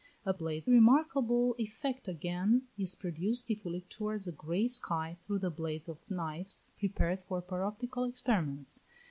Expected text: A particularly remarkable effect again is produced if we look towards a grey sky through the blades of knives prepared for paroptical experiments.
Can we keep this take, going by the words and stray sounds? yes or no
no